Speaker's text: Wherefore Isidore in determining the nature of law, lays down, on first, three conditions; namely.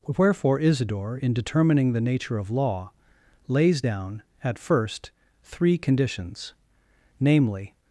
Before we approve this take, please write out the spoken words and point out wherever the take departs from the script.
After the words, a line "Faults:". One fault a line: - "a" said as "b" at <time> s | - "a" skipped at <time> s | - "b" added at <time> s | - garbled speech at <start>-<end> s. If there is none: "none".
Wherefore Isidore in determining the nature of law, lays down, at first, three conditions; namely.
Faults:
- "on" said as "at" at 4.4 s